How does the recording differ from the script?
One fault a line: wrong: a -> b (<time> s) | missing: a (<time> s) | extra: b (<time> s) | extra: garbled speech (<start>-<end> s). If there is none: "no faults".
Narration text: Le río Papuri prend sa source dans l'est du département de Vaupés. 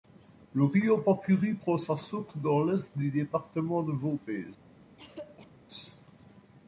no faults